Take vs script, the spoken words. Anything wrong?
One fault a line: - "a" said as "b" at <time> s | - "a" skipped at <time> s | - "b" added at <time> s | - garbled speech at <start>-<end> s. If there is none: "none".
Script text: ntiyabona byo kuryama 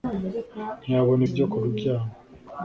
none